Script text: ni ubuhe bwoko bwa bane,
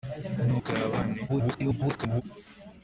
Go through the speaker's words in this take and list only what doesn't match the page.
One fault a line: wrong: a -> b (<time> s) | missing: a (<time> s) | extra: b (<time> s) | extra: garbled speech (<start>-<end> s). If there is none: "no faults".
missing: ubuhe bwoko (0.5 s)
extra: garbled speech (1.3-2.2 s)